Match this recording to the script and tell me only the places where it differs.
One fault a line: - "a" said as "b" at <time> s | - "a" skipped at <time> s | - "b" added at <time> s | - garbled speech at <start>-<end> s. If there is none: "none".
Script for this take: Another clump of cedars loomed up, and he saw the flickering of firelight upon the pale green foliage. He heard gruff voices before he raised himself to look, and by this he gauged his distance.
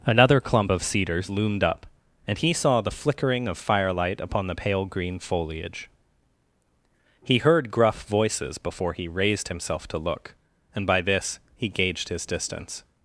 none